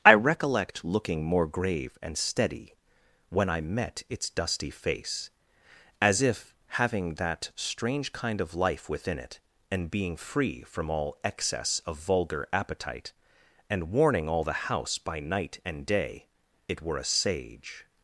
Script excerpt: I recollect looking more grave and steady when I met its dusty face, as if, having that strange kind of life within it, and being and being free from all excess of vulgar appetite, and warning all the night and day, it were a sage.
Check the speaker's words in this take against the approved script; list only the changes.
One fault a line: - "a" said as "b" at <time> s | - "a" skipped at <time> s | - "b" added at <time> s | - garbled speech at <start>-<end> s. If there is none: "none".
- "and being" skipped at 10.2 s
- "house by" added at 14.5 s